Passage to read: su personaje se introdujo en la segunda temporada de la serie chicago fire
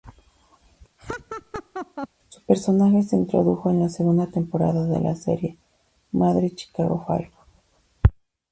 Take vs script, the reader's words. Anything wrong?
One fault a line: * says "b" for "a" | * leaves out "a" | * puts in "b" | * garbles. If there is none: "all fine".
* puts in "madre"